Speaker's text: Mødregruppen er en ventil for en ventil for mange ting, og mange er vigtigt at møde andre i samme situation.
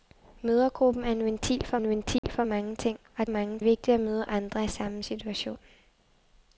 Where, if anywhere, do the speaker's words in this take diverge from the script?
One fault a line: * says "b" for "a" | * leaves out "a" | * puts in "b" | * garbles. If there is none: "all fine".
all fine